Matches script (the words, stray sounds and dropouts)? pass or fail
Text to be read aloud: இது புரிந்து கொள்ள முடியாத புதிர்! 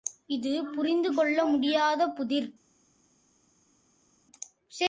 pass